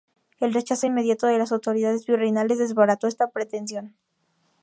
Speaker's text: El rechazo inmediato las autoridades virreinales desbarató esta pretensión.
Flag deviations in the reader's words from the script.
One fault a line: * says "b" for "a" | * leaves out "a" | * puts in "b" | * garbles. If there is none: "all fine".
* puts in "de"